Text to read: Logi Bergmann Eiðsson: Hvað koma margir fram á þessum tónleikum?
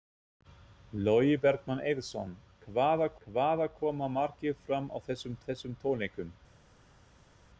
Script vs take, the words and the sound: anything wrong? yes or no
yes